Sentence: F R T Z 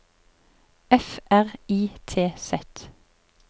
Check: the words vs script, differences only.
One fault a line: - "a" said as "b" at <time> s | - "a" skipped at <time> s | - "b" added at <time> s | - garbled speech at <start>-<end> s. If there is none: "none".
- "I" added at 1.7 s